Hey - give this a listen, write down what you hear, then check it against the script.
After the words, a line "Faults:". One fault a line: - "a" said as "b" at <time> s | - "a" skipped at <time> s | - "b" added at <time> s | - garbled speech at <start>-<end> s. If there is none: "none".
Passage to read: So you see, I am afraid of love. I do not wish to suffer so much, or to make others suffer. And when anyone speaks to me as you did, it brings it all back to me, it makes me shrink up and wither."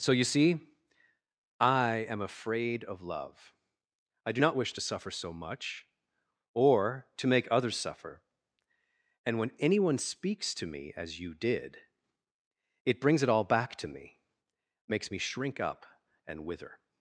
So you see, I am afraid of love. I do not wish to suffer so much, or to make others suffer. And when anyone speaks to me as you did, it brings it all back to me, makes me shrink up and wither."
Faults:
- "it" skipped at 14.2 s